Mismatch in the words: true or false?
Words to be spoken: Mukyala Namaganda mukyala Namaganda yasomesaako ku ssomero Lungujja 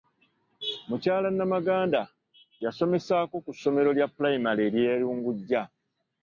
true